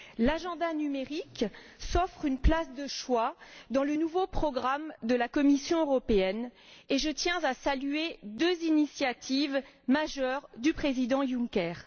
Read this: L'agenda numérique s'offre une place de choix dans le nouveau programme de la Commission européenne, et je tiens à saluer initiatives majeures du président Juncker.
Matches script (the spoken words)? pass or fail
fail